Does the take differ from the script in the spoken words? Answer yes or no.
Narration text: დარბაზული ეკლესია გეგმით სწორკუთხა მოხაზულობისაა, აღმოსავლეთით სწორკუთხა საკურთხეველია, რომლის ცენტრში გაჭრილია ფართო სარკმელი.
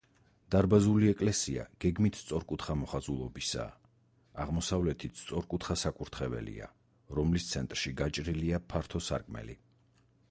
no